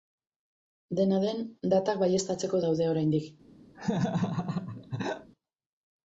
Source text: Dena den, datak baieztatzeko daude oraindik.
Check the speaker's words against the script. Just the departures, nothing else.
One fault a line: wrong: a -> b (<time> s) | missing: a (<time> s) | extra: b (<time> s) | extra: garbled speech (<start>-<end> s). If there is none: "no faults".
no faults